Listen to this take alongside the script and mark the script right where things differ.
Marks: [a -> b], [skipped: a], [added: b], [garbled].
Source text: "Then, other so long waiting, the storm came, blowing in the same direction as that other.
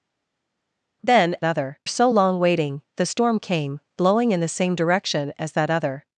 "Then, other so long waiting, the storm came, blowing in the same direction as that other.